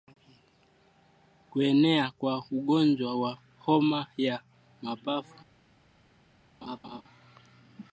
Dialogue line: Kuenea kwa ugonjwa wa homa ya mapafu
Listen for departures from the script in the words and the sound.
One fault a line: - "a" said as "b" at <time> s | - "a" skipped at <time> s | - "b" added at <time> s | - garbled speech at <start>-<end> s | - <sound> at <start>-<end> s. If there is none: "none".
- laugh at 6.6-7.0 s